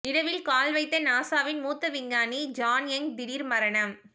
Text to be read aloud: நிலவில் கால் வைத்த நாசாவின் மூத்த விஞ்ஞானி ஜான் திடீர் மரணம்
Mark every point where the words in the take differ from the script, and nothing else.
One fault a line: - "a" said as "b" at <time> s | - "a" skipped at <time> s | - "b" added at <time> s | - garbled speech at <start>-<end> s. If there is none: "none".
- "யங்" added at 2.9 s